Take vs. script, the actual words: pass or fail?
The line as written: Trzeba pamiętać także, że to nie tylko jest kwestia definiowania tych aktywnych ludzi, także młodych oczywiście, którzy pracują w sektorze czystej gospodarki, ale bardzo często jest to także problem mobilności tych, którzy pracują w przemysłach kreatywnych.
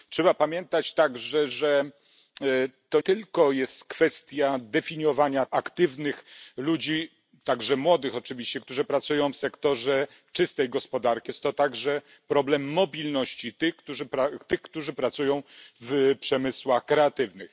fail